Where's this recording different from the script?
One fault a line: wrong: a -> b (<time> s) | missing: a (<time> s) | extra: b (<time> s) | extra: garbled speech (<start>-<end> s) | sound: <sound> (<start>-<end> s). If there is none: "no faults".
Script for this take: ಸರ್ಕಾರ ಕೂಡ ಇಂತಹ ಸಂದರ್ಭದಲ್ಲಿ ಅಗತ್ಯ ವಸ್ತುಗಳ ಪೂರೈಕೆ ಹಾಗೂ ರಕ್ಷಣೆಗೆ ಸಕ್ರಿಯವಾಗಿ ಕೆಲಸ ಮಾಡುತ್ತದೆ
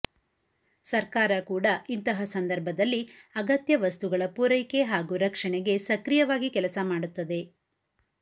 no faults